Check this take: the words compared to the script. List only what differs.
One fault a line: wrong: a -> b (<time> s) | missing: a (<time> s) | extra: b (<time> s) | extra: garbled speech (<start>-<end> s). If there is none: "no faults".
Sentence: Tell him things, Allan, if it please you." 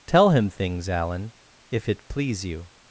no faults